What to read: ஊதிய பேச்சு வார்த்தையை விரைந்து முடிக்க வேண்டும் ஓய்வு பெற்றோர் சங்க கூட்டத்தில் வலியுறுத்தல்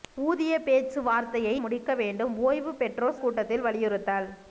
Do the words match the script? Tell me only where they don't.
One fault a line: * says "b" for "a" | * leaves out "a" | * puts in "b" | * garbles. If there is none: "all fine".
* leaves out "விரைந்து"
* leaves out "சங்க"